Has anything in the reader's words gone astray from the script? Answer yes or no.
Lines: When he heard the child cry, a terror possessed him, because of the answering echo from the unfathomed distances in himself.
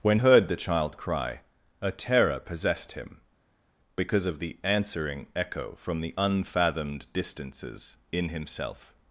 yes